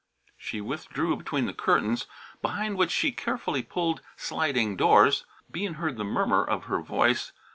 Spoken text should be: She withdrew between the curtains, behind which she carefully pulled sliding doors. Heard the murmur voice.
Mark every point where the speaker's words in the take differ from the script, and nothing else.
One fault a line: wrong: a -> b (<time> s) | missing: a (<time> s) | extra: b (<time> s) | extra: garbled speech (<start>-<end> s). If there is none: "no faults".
extra: Bean (5.5 s)
extra: of her (6.4 s)